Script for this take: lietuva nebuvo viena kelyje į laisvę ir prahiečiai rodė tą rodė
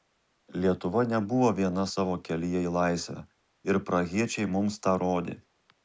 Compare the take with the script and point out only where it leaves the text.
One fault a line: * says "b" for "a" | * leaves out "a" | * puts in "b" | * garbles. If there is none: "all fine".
* puts in "savo"
* says "mums" for "rodė"